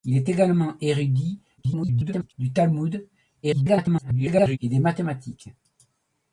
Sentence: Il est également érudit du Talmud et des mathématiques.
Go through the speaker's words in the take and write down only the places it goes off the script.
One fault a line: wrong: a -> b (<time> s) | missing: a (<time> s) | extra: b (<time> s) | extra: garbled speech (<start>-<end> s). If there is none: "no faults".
extra: garbled speech (1.6-2.3 s)
extra: garbled speech (3.4-4.6 s)